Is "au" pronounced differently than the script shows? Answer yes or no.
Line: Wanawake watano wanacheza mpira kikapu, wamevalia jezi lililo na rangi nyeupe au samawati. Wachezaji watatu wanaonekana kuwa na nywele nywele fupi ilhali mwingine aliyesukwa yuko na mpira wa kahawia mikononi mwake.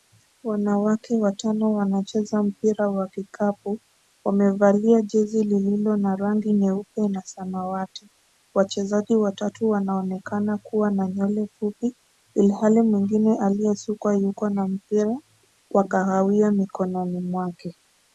yes